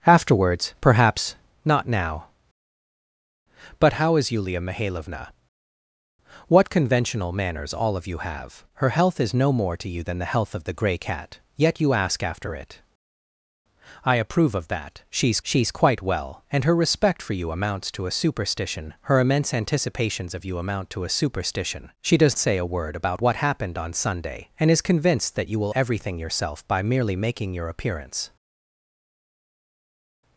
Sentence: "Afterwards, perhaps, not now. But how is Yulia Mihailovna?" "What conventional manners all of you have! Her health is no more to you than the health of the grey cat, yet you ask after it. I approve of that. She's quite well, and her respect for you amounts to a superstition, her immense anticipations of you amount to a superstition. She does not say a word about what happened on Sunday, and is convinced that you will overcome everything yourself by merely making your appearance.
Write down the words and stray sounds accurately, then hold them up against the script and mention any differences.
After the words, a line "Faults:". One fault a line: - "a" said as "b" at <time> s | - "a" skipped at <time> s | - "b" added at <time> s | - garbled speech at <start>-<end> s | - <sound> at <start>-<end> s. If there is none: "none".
"Afterwards, perhaps, not now. But how is Yulia Mihailovna?" "What conventional manners all of you have! Her health is no more to you than the health of the grey cat, yet you ask after it. I approve of that. She's she's quite well, and her respect for you amounts to a superstition, her immense anticipations of you amount to a superstition. She does say a word about what happened on Sunday, and is convinced that you will everything yourself by merely making your appearance.
Faults:
- "she's" added at 15.4 s
- "not" skipped at 22.4 s
- "overcome" skipped at 25.7 s